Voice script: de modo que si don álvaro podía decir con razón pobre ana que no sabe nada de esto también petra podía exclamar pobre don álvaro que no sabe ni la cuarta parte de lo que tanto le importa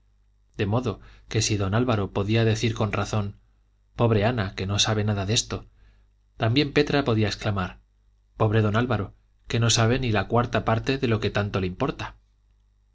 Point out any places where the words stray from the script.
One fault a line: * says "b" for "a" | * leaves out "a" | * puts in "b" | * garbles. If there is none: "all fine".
all fine